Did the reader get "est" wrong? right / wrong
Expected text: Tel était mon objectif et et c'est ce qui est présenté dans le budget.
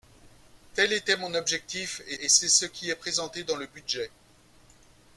right